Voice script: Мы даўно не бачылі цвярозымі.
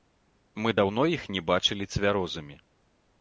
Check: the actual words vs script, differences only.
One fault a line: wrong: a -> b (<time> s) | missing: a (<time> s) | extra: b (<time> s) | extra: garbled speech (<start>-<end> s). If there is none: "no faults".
extra: іх (1.1 s)